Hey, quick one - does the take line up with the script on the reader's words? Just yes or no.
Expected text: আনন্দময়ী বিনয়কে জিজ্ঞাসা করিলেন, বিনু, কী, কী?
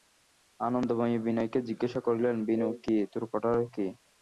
no